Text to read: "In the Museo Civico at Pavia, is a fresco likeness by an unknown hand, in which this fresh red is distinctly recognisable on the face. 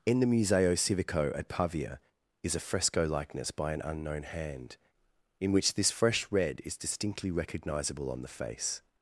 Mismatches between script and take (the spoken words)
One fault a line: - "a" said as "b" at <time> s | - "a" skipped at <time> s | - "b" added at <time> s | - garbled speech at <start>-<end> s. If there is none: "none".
none